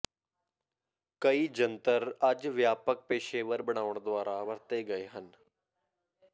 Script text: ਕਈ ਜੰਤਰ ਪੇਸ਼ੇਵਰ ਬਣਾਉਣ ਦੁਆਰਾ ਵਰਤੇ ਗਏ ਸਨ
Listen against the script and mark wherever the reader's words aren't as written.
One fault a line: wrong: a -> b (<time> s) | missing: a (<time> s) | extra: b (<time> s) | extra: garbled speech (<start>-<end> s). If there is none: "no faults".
extra: ਅੱਜ ਵਿਆਪਕ (2.3 s)
wrong: ਸਨ -> ਹਨ (5.1 s)